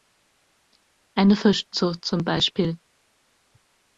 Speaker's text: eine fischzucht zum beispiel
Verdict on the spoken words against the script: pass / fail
pass